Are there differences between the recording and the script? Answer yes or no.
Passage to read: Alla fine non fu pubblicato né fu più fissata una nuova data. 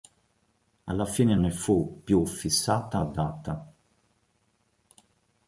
yes